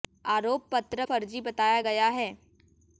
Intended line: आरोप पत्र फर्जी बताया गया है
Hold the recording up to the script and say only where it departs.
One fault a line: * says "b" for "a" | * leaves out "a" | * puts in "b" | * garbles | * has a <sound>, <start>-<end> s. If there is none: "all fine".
all fine